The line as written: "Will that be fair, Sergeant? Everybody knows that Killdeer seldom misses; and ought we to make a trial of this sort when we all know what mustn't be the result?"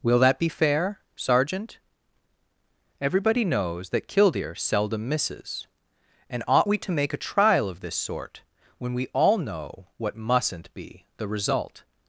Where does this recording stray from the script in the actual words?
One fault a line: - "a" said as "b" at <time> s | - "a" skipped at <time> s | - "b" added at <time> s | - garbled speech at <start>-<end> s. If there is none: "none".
none